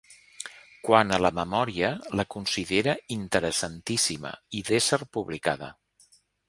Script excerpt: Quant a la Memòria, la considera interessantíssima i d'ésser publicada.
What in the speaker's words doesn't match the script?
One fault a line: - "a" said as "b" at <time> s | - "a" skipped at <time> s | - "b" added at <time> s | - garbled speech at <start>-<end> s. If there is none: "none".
none